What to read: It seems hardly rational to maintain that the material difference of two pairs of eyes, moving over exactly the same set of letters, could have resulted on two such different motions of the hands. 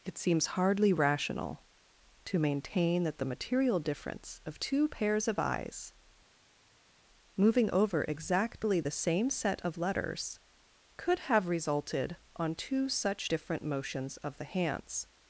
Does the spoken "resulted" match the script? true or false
true